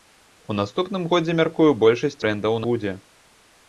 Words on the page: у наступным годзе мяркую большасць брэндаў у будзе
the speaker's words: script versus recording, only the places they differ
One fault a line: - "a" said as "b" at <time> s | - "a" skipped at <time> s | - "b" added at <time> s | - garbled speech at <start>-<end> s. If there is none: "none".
none